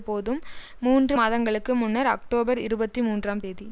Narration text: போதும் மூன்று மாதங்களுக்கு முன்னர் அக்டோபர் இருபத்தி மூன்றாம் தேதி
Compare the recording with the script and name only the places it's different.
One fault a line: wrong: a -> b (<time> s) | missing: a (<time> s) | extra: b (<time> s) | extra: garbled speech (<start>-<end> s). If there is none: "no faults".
no faults